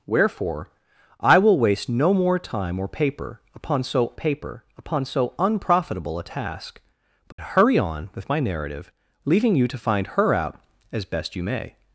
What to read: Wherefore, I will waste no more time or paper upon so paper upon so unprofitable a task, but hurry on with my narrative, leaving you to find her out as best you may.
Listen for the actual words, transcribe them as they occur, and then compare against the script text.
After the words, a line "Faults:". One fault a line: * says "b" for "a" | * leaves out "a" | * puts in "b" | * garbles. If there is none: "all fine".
Wherefore, I will waste no more time or paper upon so paper upon so unprofitable a task, but hurry on with my narrative, leaving you to find her out as best you may.
Faults:
all fine